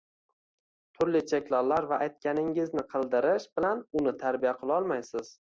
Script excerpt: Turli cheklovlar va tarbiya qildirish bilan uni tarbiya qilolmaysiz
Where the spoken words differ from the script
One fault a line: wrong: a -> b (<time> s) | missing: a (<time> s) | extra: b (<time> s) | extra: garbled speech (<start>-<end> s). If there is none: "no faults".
wrong: tarbiya -> aytganingizni (2.0 s)